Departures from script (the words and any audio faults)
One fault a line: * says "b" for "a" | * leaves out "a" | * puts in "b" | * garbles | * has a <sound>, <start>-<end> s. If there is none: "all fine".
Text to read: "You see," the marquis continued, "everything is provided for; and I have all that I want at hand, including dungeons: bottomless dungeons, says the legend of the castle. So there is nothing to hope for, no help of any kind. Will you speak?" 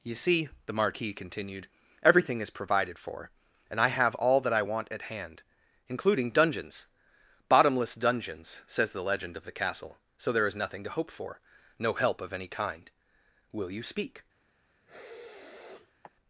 * has a sniff, 14.9-16.1 s